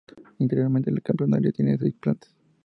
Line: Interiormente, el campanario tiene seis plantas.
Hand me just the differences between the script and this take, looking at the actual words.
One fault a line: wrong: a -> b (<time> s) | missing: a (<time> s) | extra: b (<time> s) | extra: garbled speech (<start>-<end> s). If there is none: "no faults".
no faults